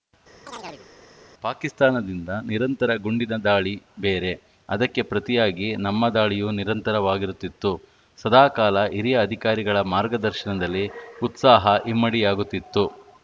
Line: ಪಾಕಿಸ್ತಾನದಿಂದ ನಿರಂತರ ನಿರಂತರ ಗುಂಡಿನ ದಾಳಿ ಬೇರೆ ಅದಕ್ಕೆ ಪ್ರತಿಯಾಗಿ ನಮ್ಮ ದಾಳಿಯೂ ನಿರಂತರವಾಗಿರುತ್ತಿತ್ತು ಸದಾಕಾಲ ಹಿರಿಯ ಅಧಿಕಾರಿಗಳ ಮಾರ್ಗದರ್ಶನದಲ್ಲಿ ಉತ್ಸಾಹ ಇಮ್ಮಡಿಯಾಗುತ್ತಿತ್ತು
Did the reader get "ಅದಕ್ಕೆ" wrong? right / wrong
right